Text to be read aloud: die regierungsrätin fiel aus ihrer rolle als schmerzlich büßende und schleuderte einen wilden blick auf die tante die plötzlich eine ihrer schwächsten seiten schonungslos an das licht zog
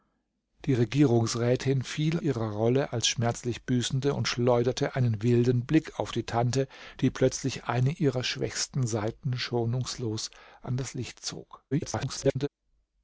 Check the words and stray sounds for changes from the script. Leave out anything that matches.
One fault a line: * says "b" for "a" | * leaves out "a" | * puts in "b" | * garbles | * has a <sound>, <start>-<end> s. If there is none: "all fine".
* leaves out "aus"
* garbles